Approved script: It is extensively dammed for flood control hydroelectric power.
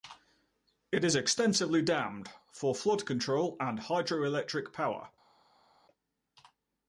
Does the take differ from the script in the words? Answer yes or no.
yes